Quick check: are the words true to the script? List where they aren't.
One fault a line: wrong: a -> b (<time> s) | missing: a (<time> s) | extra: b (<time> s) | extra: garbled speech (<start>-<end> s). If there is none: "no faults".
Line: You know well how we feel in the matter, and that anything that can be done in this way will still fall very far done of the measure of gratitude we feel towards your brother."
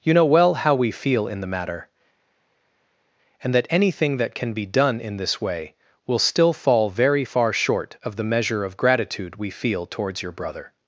wrong: done -> short (7.5 s)